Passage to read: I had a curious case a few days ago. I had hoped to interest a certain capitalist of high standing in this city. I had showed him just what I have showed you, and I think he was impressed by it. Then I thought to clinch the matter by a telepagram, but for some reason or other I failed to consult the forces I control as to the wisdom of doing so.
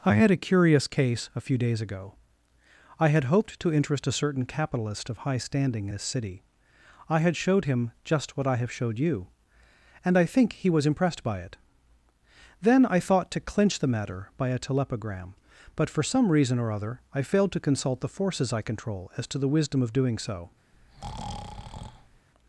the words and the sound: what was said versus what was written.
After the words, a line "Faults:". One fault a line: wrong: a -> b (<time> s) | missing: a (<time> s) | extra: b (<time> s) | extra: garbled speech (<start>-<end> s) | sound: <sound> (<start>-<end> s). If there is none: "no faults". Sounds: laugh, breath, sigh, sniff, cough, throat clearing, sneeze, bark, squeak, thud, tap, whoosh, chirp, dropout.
I had a curious case a few days ago. I had hoped to interest a certain capitalist of high standing this city. I had showed him just what I have showed you, and I think he was impressed by it. Then I thought to clinch the matter by a telepagram, but for some reason or other I failed to consult the forces I control as to the wisdom of doing so.
Faults:
missing: in (5.9 s)
sound: breath (20.7-22.3 s)